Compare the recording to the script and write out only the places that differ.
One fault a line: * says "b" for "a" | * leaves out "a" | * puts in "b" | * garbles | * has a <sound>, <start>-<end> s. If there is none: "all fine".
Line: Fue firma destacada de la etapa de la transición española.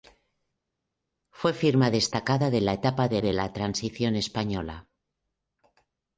* puts in "de"